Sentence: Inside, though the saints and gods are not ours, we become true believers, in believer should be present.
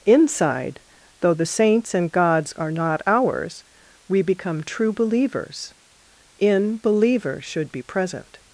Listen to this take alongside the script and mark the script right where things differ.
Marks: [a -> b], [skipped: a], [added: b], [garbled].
Inside, though the saints and gods are not ours, we become true believers, in believer should be present.